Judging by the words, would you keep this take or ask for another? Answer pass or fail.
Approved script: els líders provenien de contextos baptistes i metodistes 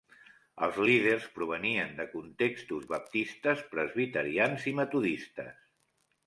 fail